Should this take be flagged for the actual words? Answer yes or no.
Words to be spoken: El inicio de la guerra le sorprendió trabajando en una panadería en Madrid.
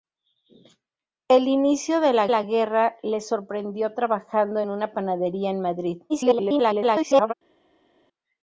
yes